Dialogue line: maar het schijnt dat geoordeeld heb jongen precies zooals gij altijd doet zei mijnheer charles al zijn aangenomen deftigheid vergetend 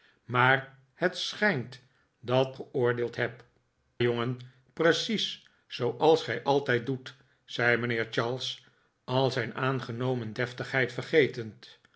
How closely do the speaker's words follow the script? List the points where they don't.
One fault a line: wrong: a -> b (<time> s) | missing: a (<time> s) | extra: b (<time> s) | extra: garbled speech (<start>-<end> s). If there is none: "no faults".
no faults